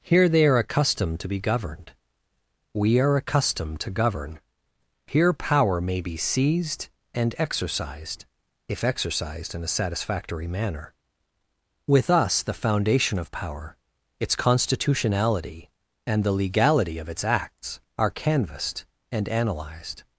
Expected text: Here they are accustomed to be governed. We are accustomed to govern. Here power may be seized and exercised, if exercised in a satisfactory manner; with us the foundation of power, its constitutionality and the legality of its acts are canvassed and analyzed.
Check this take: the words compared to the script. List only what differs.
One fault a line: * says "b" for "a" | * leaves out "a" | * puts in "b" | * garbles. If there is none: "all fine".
all fine